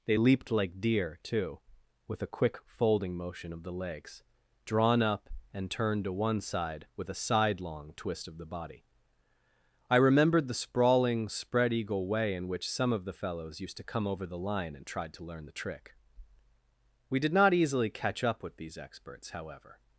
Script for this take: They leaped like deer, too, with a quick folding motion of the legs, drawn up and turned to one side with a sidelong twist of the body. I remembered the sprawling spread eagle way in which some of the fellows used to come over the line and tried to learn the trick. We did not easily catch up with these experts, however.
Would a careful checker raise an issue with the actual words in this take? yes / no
no